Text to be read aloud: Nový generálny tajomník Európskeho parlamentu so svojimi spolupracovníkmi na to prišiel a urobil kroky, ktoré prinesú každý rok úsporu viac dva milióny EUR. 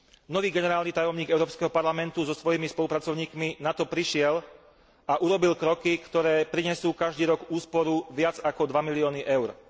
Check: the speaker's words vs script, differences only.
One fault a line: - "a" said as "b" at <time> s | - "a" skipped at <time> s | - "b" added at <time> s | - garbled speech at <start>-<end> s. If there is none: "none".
- "ako" added at 8.4 s